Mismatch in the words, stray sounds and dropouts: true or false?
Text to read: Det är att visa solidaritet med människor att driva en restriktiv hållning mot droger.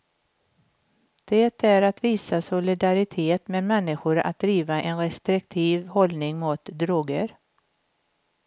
false